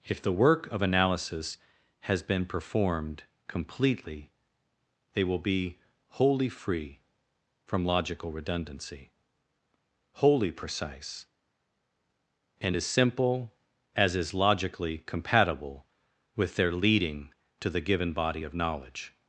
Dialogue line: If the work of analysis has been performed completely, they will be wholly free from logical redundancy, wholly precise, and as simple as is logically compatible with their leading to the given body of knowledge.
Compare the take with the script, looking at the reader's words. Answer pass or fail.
pass